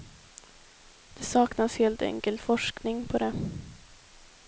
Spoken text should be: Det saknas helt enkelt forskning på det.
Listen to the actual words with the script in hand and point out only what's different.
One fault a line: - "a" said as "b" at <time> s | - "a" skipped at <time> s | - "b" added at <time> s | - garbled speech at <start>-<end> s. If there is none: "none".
none